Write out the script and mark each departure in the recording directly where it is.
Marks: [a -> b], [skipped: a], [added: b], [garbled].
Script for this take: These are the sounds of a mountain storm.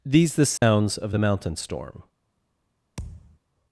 These [skipped: are] the sounds of [a -> the] mountain storm.